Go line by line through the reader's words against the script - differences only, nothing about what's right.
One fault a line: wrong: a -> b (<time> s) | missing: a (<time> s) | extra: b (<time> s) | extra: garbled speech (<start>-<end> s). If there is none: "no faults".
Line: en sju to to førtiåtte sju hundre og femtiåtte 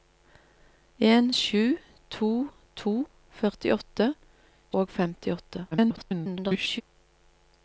missing: sju hundre (4.1 s)
extra: garbled speech (5.7-6.8 s)